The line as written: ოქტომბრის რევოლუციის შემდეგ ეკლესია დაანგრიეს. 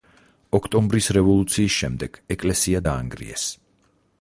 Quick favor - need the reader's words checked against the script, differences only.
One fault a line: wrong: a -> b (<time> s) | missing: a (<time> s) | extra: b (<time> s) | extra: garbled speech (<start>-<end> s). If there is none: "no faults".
no faults